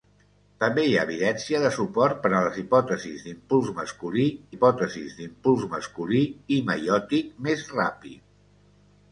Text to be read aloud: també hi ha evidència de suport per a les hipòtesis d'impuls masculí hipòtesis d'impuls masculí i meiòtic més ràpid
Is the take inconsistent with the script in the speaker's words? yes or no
no